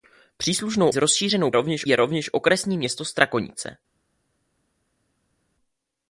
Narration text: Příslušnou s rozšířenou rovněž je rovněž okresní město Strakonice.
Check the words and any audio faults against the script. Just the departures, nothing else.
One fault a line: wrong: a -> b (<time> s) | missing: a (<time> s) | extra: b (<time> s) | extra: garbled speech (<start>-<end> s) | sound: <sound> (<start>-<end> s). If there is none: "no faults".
no faults